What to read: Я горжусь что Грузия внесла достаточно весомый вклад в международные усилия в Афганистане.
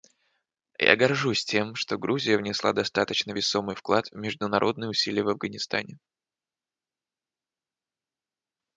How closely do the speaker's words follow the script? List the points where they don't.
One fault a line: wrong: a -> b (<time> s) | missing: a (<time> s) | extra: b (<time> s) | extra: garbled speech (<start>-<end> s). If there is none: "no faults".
extra: тем (1.4 s)